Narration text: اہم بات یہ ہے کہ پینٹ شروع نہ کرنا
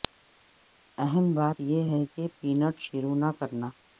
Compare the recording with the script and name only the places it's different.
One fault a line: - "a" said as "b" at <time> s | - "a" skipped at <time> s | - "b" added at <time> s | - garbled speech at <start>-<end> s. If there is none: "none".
none